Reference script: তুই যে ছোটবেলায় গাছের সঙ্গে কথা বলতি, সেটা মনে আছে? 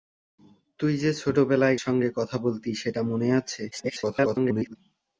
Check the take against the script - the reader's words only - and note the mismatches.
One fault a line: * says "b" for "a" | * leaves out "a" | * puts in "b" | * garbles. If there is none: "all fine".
* leaves out "গাছের"
* garbles